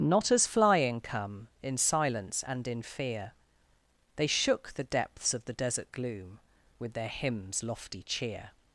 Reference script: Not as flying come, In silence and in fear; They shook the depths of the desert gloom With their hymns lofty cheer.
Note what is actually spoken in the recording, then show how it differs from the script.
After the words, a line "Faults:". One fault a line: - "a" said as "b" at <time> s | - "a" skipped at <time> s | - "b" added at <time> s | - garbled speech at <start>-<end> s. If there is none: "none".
Not as flying come, In silence and in fear; They shook the depths of the desert gloom With their hymns lofty cheer.
Faults:
none